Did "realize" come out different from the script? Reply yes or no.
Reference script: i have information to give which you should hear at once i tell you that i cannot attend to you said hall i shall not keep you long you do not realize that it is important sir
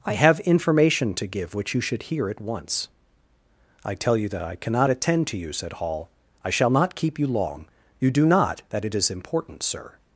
yes